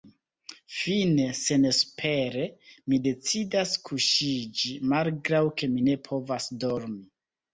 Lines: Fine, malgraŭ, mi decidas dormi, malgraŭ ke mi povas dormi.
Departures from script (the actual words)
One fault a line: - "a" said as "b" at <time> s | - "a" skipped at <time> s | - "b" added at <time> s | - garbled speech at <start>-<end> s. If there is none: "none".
- "malgraŭ" said as "senespere" at 1.4 s
- "dormi" said as "kuŝiĝi" at 3.9 s
- "ne" added at 5.9 s